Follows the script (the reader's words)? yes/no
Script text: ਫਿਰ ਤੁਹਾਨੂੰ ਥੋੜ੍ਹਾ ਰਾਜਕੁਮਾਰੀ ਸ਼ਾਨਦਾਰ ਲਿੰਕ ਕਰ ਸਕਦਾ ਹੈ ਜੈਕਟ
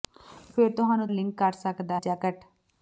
no